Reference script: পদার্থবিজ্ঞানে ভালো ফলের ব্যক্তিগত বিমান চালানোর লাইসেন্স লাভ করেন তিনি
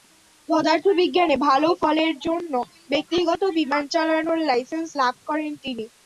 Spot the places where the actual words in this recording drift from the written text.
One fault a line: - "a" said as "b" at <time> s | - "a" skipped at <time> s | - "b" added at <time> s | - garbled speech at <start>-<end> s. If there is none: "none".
- "জন্য" added at 2.2 s